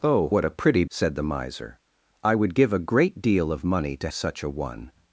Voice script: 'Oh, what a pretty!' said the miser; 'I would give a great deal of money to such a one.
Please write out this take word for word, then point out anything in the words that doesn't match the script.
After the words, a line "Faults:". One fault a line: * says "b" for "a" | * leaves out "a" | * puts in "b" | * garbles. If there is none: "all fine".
'Oh, what a pretty!' said the miser; 'I would give a great deal of money to such a one.
Faults:
all fine